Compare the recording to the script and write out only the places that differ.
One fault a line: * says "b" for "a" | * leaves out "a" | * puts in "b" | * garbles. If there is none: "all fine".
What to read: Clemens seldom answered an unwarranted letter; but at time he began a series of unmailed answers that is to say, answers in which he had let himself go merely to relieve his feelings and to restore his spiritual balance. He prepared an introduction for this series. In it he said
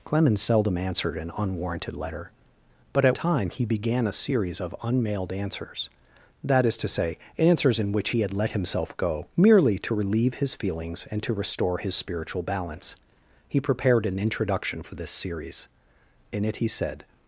all fine